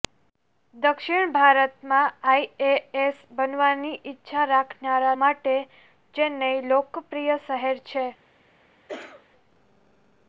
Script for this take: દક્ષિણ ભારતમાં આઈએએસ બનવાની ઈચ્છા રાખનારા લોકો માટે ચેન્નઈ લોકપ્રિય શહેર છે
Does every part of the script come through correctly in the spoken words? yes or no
no